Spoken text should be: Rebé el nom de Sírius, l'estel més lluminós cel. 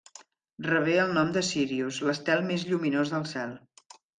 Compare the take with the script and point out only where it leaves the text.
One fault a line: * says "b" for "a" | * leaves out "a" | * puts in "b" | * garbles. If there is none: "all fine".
* puts in "del"